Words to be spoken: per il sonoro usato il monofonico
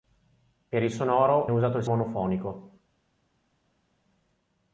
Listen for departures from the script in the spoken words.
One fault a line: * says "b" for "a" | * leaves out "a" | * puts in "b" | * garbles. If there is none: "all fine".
all fine